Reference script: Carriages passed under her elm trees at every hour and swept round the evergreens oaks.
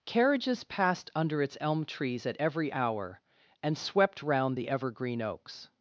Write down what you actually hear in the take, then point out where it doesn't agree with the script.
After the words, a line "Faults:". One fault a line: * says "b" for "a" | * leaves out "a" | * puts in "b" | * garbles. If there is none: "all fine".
Carriages passed under its elm trees at every hour and swept round the evergreen oaks.
Faults:
* says "its" for "her"
* says "evergreen" for "evergreens"